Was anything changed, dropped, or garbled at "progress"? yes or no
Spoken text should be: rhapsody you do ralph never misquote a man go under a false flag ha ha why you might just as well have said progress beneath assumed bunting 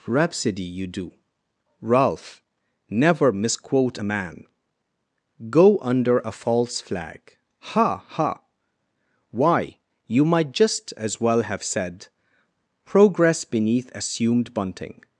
no